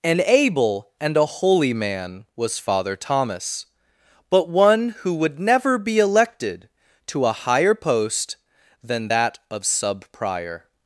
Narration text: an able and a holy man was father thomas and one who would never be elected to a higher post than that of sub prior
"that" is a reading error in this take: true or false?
false